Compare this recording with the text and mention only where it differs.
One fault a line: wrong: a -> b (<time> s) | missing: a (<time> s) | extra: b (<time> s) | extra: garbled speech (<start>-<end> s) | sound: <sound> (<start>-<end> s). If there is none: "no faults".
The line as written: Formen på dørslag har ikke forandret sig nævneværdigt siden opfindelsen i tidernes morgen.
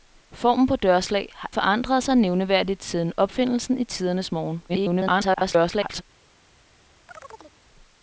missing: ikke (1.5 s)
extra: garbled speech (4.7-6.0 s)
sound: chirp (7.1-7.6 s)